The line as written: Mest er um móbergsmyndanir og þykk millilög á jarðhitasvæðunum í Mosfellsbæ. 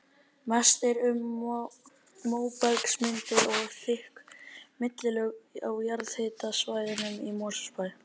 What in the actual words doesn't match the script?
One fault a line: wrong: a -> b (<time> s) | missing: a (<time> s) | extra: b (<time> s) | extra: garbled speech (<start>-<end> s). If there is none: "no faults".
no faults